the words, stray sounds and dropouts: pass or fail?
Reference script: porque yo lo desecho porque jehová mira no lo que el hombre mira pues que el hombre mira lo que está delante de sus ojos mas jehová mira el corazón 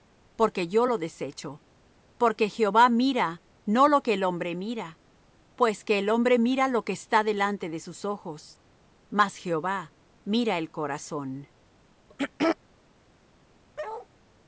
fail